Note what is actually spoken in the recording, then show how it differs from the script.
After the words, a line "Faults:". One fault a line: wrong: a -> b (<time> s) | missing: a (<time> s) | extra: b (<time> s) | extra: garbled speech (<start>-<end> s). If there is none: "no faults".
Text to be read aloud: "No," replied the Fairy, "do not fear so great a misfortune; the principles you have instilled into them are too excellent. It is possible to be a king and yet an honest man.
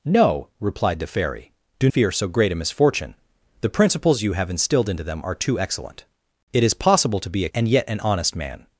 "No," replied the Fairy, "do fear so great a misfortune; the principles you have instilled into them are too excellent. It is possible to be a and yet an honest man.
Faults:
missing: not (1.9 s)
missing: king (7.5 s)